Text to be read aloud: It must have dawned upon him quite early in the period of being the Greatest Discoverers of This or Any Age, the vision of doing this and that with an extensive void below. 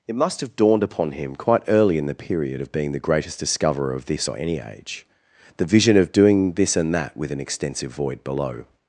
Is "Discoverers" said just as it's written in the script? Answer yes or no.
no